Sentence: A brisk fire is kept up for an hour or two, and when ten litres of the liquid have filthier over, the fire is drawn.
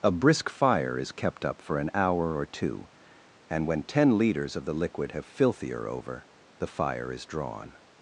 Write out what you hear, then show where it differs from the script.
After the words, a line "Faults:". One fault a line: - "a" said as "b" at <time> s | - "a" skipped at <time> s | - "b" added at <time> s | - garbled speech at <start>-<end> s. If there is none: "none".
A brisk fire is kept up for an hour or two, and when ten litres of the liquid have filthier over, the fire is drawn.
Faults:
none